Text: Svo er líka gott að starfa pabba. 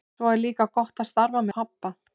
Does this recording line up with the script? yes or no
yes